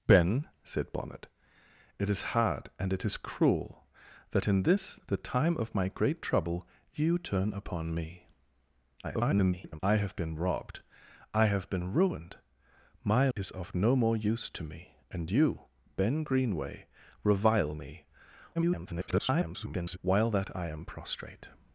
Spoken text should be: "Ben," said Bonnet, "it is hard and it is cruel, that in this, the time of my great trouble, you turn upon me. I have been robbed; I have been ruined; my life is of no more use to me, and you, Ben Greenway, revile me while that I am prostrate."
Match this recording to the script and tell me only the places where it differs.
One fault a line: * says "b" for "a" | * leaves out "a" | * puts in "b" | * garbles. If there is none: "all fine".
* garbles
* leaves out "life"
* garbles